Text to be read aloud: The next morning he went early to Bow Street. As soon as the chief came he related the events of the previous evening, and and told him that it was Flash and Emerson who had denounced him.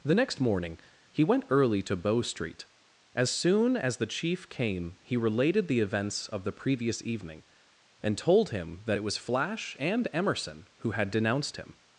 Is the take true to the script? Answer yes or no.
no